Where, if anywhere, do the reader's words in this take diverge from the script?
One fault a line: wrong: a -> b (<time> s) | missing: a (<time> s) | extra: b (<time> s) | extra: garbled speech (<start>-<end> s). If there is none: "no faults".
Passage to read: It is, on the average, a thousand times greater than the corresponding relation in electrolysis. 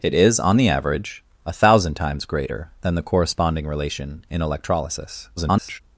extra: garbled speech (5.4-5.8 s)